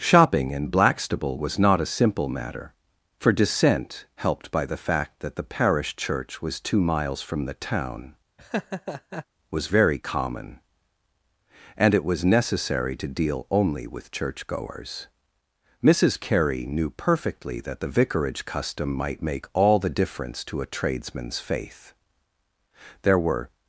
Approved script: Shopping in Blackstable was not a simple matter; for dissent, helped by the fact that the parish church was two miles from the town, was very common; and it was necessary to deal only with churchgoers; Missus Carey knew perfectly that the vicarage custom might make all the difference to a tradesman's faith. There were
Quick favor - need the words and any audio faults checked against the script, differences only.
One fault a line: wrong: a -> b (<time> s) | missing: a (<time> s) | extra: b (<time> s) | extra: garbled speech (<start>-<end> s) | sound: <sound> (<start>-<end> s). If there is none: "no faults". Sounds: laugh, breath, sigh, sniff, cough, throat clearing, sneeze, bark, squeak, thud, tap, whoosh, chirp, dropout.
sound: laugh (8.4-9.3 s)